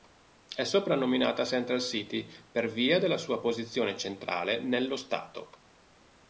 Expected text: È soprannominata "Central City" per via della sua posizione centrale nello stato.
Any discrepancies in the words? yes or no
no